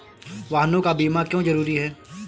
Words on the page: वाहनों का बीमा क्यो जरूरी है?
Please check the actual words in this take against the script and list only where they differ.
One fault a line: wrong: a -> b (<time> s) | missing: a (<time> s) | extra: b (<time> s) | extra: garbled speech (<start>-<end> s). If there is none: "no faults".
no faults